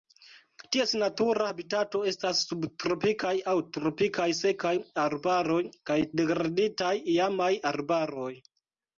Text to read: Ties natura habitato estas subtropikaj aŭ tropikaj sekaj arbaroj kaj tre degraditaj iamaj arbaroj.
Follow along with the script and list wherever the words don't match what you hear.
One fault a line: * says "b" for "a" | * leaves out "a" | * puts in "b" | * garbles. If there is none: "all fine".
* leaves out "tre"